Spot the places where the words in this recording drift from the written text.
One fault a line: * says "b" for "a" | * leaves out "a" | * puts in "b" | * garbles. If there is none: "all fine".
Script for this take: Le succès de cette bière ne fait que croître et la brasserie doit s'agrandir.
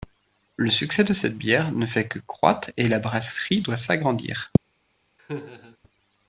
all fine